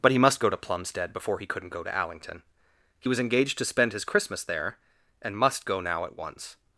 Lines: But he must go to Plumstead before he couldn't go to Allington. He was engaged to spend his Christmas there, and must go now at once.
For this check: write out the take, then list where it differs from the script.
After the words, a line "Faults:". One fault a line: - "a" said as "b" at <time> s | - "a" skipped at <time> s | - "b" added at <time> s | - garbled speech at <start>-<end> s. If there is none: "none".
But he must go to Plumstead before he couldn't go to Allington. He was engaged to spend his Christmas there, and must go now at once.
Faults:
none